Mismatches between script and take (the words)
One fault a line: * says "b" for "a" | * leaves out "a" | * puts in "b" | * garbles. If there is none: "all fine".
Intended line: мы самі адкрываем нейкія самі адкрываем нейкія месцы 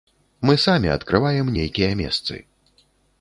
* leaves out "самі адкрываем нейкія"